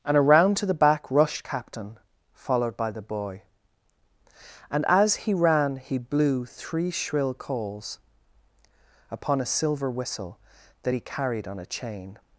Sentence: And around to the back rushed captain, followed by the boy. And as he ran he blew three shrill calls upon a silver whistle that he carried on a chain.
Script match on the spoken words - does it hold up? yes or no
yes